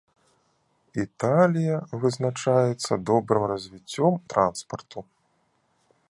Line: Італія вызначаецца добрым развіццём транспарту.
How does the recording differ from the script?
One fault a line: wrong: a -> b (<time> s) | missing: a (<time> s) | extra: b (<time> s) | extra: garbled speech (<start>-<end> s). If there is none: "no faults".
no faults